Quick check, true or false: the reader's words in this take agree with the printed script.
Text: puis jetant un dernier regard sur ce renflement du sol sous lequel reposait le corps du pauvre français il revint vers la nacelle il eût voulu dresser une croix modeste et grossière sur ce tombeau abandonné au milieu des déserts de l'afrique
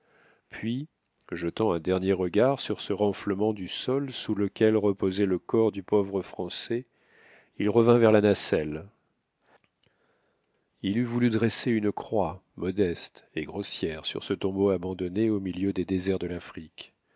true